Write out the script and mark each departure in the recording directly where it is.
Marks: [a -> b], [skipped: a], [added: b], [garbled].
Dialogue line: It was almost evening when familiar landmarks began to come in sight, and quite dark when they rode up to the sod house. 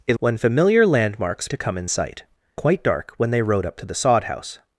It [skipped: was almost evening] when familiar landmarks [skipped: began] to come in sight, [skipped: and] quite dark when they rode up to the sod house.